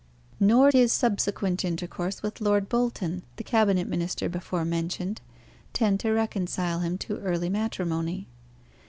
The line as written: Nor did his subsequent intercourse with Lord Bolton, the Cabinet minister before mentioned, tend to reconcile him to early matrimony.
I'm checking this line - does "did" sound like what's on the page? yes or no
no